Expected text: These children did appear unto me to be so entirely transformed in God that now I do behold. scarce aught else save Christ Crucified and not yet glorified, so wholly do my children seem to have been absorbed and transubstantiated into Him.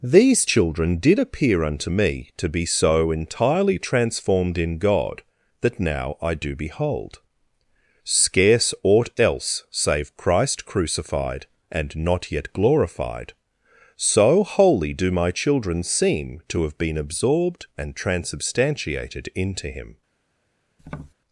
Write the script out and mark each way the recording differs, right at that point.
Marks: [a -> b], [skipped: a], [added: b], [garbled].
These children did appear unto me to be so entirely transformed in God that now I do behold. scarce aught else save Christ Crucified and not yet glorified, so wholly do my children seem to have been absorbed and transubstantiated into Him.